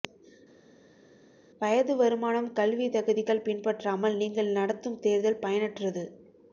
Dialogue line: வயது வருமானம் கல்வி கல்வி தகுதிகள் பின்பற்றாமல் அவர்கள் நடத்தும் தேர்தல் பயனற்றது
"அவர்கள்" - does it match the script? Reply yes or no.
no